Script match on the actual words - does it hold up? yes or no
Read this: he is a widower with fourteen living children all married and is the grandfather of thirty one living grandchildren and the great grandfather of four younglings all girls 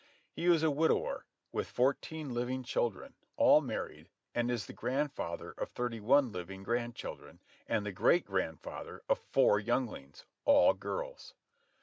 yes